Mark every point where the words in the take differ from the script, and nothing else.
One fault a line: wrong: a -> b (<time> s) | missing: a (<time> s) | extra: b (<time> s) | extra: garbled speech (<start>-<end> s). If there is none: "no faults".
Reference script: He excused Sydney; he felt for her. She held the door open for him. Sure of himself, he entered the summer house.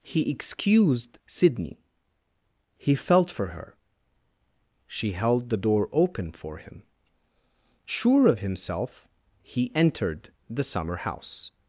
no faults